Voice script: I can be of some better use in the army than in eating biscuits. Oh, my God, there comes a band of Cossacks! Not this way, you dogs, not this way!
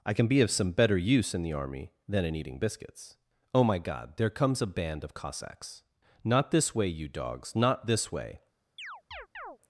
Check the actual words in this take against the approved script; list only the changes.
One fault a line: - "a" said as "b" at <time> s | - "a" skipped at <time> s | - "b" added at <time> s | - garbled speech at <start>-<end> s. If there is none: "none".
none